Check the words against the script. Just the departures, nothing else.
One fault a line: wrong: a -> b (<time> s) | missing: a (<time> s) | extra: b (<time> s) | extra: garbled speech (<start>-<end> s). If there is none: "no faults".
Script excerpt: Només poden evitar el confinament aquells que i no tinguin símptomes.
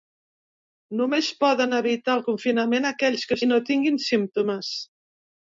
no faults